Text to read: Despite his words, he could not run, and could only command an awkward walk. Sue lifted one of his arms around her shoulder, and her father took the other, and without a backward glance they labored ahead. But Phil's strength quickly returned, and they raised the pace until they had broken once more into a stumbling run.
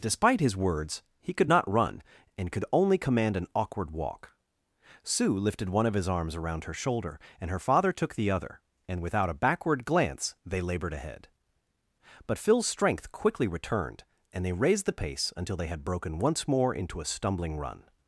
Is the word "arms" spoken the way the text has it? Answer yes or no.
yes